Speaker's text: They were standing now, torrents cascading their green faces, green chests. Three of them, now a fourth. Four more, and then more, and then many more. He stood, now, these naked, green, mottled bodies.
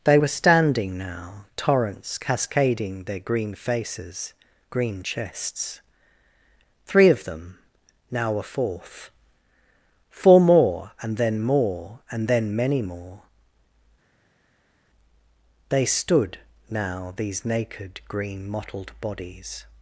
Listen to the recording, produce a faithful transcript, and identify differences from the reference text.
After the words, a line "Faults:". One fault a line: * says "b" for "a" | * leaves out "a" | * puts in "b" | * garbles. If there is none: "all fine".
They were standing now, torrents cascading their green faces, green chests. Three of them, now a fourth. Four more, and then more, and then many more. They stood, now, these naked, green, mottled bodies.
Faults:
* says "They" for "He"